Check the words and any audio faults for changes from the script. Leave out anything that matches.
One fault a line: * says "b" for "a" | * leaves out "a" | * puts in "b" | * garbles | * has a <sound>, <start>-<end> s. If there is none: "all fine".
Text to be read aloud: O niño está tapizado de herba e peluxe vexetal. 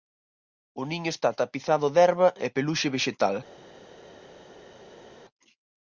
all fine